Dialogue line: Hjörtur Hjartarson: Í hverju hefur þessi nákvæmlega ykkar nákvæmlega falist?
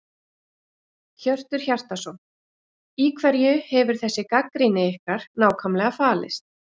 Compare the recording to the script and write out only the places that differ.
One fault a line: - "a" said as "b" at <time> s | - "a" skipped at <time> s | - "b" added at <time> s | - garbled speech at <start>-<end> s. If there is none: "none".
- "nákvæmlega" said as "gagnrýni" at 4.3 s